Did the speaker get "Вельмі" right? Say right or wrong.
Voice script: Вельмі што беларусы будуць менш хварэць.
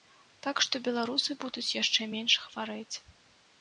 wrong